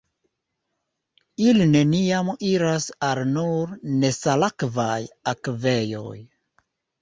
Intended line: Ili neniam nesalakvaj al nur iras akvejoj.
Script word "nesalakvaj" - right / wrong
wrong